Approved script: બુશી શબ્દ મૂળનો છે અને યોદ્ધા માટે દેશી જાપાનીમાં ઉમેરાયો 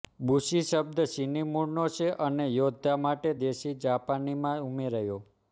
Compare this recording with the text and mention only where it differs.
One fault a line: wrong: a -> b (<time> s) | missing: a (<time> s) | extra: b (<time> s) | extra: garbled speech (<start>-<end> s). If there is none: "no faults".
extra: ચીની (1.1 s)